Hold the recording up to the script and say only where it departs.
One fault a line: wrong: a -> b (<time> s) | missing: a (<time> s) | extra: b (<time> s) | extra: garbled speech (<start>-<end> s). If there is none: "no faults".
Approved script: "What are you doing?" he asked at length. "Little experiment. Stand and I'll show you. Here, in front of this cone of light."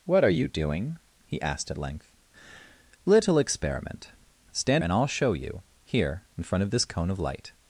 no faults